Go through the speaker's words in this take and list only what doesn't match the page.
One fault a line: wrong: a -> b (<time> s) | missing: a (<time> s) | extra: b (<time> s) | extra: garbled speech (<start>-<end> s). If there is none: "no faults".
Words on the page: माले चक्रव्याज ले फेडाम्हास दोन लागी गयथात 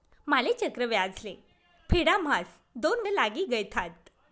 no faults